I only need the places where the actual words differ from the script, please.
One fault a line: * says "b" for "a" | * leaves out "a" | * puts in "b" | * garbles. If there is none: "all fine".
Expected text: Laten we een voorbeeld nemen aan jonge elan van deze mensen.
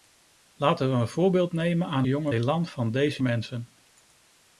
all fine